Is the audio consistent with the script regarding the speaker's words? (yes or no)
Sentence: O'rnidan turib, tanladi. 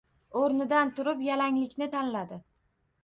no